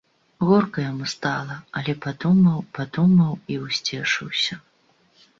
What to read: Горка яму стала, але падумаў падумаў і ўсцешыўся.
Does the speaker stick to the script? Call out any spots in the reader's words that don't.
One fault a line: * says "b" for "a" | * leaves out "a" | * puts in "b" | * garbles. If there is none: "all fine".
all fine